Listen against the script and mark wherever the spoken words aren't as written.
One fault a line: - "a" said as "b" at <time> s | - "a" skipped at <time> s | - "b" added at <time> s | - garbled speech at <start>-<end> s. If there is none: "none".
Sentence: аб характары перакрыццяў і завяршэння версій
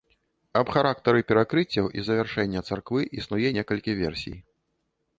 - "царквы існуе некалькі" added at 2.7 s